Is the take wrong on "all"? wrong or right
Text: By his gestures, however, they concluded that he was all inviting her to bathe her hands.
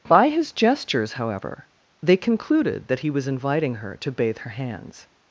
wrong